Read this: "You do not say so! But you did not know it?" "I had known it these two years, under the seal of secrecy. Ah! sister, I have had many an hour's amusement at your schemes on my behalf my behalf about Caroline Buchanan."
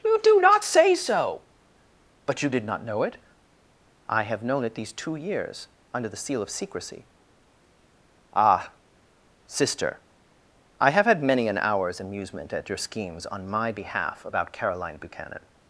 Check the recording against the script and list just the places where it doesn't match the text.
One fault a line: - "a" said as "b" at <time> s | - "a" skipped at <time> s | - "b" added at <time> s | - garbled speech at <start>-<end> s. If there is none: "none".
- "had" said as "have" at 4.2 s
- "my behalf" skipped at 14.2 s